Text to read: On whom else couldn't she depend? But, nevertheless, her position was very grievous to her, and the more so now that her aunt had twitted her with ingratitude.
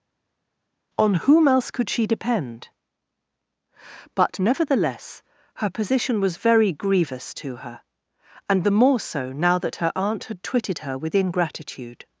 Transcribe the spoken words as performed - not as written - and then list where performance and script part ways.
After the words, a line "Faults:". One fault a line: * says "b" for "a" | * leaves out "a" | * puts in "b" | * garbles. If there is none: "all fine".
On whom else could she depend? But, nevertheless, her position was very grievous to her, and the more so now that her aunt had twitted her with ingratitude.
Faults:
* says "could" for "couldn't"